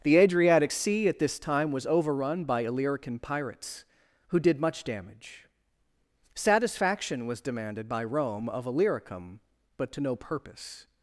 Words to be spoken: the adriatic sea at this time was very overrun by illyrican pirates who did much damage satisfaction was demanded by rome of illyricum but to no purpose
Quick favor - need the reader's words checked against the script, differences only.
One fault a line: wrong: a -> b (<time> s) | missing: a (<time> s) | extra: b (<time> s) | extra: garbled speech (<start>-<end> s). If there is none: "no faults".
missing: very (1.8 s)